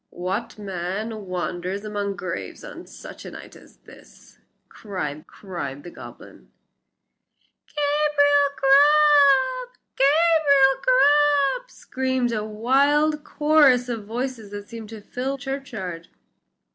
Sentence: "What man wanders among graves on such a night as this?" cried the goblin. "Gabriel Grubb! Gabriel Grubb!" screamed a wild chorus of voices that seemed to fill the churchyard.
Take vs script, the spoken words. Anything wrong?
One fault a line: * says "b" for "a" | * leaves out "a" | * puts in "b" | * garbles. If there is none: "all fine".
* puts in "cried"
* leaves out "the"